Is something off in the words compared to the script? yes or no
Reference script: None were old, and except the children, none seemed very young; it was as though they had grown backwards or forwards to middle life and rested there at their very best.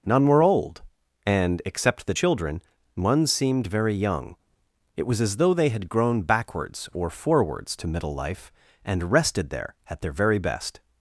yes